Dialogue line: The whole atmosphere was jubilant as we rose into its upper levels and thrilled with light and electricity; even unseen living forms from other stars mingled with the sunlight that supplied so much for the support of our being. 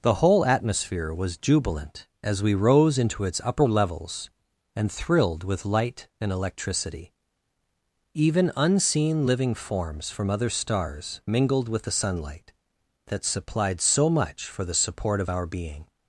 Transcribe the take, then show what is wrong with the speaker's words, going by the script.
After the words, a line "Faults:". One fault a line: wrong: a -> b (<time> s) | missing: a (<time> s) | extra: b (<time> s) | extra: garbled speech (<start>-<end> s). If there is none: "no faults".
The whole atmosphere was jubilant as we rose into its upper levels and thrilled with light and electricity; even unseen living forms from other stars mingled with the sunlight that supplied so much for the support of our being.
Faults:
no faults